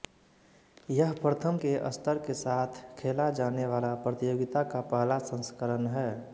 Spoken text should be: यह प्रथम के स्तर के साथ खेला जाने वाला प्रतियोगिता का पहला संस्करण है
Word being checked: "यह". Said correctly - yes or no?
yes